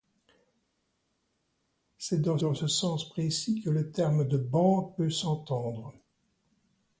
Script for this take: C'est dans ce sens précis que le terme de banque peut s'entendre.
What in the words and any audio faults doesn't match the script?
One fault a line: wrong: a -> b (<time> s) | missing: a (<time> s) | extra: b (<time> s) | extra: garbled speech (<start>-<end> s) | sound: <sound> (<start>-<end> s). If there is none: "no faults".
extra: dans (2.4 s)